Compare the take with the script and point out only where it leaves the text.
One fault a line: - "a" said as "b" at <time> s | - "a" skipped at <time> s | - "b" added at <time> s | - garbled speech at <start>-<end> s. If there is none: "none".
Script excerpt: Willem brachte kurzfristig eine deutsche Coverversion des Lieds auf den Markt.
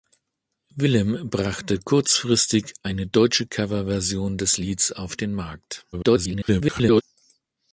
- garbled speech at 5.9-7.0 s